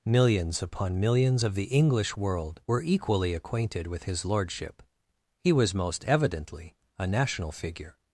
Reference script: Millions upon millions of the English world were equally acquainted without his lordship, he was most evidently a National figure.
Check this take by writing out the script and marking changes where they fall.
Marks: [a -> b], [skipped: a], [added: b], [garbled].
Millions upon millions of the English world were equally acquainted [without -> with] his lordship, he was most evidently a National figure.